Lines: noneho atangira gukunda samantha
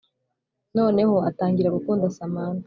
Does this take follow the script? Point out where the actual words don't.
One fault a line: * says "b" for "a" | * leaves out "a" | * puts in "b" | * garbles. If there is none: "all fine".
all fine